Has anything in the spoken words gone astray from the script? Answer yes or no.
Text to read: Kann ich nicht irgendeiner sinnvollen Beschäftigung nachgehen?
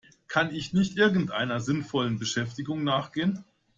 no